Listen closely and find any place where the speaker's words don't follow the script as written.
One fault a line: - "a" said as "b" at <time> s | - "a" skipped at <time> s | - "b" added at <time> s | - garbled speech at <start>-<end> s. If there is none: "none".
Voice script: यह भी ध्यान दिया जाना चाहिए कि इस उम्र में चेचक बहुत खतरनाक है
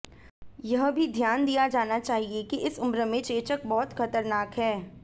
none